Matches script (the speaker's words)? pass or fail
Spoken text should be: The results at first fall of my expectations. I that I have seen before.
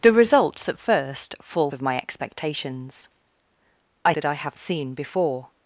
pass